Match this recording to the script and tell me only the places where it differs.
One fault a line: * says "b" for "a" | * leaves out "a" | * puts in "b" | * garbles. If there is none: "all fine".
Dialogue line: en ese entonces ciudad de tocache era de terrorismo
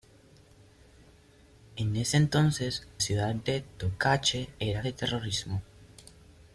all fine